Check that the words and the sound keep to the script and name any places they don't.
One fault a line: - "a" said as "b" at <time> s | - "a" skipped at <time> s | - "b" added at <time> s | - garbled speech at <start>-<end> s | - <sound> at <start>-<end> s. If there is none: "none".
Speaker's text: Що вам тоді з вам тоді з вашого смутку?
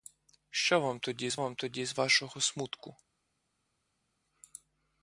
none